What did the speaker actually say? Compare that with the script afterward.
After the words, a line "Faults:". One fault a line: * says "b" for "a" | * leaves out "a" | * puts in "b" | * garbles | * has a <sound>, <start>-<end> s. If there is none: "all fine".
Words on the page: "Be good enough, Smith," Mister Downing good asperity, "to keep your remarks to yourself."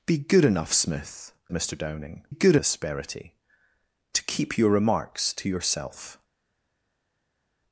"Be good enough, Smith," Mister Downing good asperity, "to keep your remarks to yourself."
Faults:
all fine